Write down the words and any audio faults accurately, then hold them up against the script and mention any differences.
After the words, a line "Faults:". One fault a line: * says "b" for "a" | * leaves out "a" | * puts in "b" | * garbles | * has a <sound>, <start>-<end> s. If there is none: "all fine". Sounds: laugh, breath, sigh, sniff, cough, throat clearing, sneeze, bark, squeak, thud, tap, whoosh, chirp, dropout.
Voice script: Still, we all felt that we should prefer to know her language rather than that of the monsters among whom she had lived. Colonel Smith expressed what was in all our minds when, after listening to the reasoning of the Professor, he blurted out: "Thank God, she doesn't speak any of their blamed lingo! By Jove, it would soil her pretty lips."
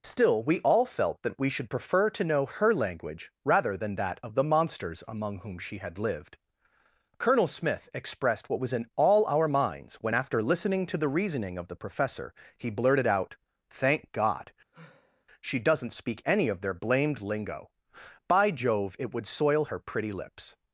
Still, we all felt that we should prefer to know her language rather than that of the monsters among whom she had lived. Colonel Smith expressed what was in all our minds when, after listening to the reasoning of the Professor, he blurted out: "Thank God, she doesn't speak any of their blamed lingo! By Jove, it would soil her pretty lips."
Faults:
* has a sigh, 14.7-15.2 s